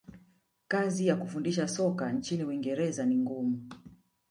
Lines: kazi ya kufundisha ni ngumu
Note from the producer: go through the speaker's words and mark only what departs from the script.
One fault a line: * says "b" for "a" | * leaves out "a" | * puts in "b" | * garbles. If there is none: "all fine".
* puts in "soka nchini uingereza"